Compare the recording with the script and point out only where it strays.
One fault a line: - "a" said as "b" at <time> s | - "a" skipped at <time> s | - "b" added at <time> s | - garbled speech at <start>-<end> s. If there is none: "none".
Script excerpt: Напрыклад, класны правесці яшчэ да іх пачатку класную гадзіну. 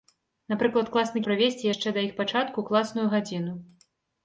none